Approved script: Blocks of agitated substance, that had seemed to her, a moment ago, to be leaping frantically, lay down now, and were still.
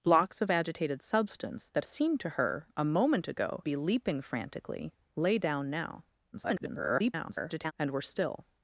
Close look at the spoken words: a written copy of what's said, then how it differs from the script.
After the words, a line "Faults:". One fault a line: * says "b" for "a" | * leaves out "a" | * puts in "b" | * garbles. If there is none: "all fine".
Blocks of agitated substance, that seemed to her, a moment ago, be leaping frantically, lay down now, [garbled] and were still.
Faults:
* leaves out "had"
* leaves out "to"
* garbles